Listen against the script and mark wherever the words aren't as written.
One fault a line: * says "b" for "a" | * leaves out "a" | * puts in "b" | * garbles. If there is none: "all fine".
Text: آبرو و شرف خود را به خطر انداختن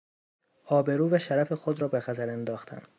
all fine